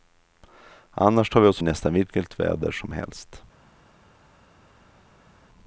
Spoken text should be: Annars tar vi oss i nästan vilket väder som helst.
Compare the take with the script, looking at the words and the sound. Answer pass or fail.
pass